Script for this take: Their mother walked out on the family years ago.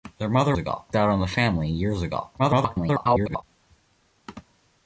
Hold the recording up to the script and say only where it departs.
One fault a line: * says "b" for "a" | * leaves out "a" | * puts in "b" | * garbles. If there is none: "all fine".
* says "ago" for "walked"
* garbles